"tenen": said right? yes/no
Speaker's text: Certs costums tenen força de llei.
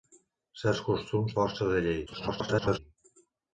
no